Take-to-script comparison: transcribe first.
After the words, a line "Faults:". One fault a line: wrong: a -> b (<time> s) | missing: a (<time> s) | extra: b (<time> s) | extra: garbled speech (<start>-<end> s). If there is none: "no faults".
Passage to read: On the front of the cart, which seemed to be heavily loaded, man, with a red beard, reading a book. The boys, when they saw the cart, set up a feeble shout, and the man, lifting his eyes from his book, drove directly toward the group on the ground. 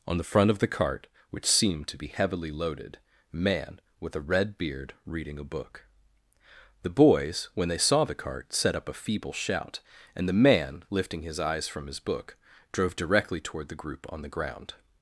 On the front of the cart, which seemed to be heavily loaded, man, with a red beard, reading a book. The boys, when they saw the cart, set up a feeble shout, and the man, lifting his eyes from his book, drove directly toward the group on the ground.
Faults:
no faults